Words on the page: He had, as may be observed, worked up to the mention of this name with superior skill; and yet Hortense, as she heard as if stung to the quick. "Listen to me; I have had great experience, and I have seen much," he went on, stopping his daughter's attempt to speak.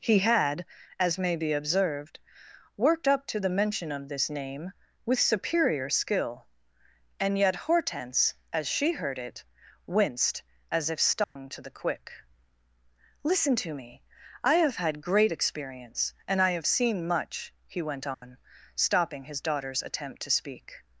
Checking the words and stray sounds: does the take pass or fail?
fail